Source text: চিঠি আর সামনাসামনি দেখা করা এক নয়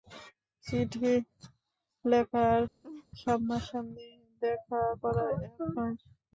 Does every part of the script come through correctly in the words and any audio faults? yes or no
no